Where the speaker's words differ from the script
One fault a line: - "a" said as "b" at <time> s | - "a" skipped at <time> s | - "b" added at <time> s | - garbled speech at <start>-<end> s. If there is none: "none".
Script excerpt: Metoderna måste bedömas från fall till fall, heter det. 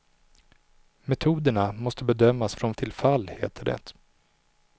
- "fall" skipped at 2.7 s